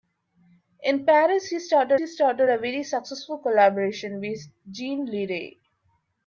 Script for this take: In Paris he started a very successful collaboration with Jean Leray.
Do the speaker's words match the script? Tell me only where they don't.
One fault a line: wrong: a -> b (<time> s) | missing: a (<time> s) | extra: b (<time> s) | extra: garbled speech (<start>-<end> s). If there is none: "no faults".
extra: he started (2.0 s)